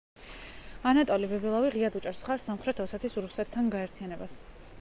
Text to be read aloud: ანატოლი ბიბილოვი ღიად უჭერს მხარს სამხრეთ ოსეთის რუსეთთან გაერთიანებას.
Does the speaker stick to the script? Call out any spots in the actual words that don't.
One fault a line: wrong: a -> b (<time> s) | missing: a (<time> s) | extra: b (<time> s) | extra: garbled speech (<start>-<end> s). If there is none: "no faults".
no faults